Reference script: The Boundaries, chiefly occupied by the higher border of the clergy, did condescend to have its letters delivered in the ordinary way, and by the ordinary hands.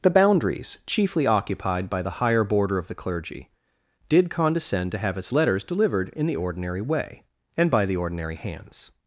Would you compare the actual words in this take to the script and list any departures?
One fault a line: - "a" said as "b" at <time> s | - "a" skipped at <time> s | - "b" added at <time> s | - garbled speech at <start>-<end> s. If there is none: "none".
none